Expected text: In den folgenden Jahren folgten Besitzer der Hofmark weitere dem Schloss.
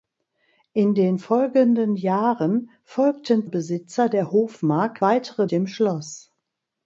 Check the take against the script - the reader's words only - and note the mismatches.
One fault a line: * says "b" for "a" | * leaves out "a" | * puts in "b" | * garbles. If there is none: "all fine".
all fine